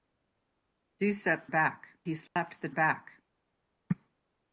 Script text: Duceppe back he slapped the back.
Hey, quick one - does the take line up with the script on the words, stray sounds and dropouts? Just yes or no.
no